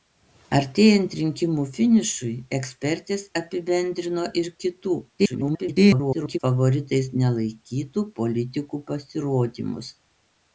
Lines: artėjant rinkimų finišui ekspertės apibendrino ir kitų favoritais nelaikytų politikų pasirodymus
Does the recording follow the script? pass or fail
fail